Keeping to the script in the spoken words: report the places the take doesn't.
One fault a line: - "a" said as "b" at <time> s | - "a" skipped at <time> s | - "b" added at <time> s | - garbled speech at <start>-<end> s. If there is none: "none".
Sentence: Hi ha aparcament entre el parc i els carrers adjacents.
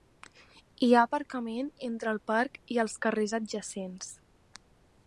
none